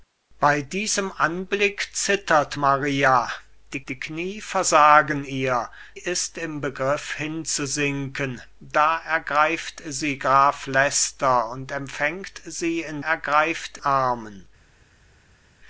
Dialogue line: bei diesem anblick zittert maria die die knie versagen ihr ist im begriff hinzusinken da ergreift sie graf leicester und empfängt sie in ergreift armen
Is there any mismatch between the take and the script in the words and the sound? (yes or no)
no